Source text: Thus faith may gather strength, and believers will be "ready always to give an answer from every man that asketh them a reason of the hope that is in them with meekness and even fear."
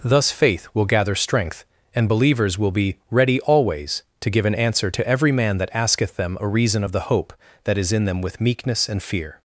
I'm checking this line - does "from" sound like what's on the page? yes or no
no